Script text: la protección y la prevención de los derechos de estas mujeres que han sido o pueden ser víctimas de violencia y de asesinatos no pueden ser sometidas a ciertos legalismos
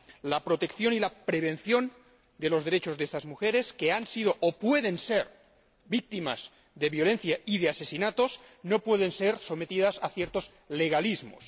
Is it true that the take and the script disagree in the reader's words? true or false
false